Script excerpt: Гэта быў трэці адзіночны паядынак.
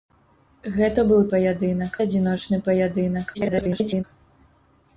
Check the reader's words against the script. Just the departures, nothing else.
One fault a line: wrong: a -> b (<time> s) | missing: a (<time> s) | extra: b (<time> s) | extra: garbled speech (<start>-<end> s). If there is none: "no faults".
wrong: трэці -> паядынак (1.3 s)
extra: garbled speech (3.3-4.0 s)